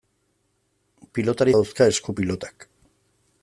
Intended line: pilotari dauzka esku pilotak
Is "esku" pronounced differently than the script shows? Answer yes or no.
no